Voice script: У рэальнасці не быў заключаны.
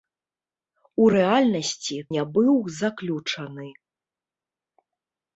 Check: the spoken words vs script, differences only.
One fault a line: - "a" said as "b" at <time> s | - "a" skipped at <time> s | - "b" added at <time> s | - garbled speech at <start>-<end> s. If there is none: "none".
none